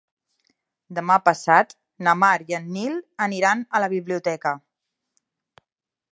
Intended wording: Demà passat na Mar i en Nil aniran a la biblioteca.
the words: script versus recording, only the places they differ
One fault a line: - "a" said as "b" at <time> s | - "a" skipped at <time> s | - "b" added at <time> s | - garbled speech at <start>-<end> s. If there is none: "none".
none